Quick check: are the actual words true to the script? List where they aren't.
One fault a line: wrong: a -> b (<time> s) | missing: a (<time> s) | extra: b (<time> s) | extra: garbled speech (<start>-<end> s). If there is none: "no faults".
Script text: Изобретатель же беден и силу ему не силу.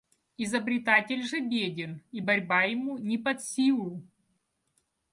wrong: силу -> борьба (2.2 s)
extra: под (3.2 s)